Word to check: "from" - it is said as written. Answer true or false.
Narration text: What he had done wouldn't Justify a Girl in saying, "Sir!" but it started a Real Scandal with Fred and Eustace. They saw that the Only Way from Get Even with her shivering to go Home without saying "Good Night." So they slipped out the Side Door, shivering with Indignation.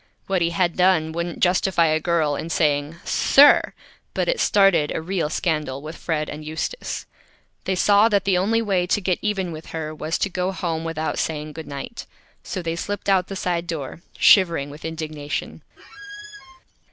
false